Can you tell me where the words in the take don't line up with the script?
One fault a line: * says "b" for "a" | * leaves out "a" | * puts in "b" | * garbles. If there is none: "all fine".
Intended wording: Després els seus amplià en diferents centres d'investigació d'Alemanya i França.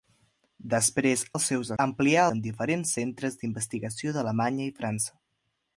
all fine